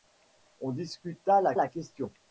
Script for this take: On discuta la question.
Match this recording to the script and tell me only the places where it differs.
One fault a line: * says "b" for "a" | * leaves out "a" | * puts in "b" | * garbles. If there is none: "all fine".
* puts in "la"